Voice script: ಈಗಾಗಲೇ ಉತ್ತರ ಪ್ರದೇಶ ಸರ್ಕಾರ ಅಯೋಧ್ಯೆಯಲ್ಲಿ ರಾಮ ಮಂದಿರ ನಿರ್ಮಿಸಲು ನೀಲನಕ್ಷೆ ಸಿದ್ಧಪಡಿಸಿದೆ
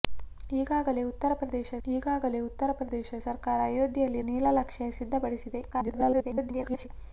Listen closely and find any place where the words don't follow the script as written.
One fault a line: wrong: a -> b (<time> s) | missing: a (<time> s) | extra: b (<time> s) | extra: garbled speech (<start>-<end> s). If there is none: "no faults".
wrong: ಸರ್ಕಾರ ಅಯೋಧ್ಯೆಯಲ್ಲಿ ರಾಮ ಮಂದಿರ ನಿರ್ಮಿಸಲು -> ಈಗಾಗಲೇ ಉತ್ತರ ಪ್ರದೇಶ ಸರ್ಕಾರ ಅಯೋಧ್ಯೆಯಲ್ಲಿ (1.9 s)
extra: garbled speech (5.7-6.9 s)